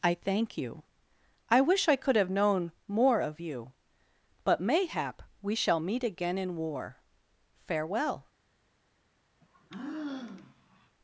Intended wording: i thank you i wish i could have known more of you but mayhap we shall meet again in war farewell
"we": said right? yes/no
yes